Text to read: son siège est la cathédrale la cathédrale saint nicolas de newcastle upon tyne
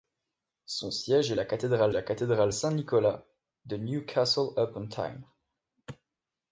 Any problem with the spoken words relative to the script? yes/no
no